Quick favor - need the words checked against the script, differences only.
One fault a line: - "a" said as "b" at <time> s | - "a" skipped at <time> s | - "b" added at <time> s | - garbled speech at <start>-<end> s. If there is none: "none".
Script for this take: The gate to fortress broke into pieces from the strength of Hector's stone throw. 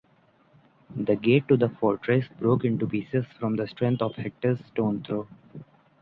- "the" added at 1.6 s